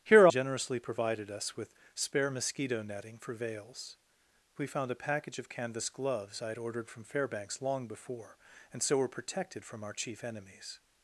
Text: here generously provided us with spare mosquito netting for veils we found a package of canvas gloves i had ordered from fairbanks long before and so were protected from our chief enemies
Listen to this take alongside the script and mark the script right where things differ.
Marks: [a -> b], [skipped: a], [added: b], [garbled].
here generously provided us with spare mosquito netting for veils we found a package of canvas gloves i had ordered from fairbanks long before and so were protected from our chief enemies